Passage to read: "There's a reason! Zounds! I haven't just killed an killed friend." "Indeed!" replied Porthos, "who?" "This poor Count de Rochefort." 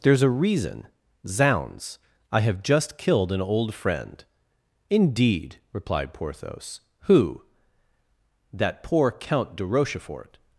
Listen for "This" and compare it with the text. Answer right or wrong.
wrong